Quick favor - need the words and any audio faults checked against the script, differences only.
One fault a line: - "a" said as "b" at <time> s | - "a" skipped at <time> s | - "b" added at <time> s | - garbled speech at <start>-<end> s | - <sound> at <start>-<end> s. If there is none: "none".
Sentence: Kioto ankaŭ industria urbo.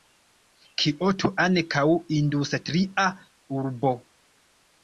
none